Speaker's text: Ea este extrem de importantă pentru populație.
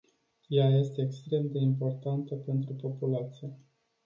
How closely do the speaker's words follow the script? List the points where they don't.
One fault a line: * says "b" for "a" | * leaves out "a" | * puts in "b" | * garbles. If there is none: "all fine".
all fine